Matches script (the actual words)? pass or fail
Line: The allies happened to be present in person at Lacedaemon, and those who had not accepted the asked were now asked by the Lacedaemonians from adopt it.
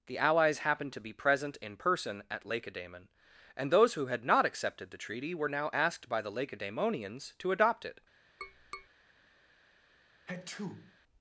fail